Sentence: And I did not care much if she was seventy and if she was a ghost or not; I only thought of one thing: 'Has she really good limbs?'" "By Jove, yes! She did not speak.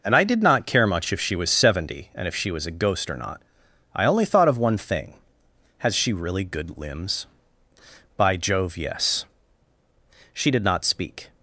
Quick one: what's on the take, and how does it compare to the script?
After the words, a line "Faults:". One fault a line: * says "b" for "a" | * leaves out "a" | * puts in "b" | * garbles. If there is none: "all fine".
And I did not care much if she was seventy and if she was a ghost or not; I only thought of one thing: 'Has she really good limbs?'" "By Jove, yes! She did not speak.
Faults:
all fine